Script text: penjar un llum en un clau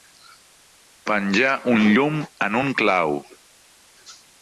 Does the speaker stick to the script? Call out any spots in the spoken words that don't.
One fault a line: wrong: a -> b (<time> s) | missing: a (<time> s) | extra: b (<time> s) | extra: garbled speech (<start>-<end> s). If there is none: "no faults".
no faults